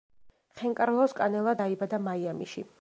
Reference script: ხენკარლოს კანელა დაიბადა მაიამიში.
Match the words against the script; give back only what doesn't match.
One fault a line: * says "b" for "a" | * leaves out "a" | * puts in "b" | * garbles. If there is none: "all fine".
all fine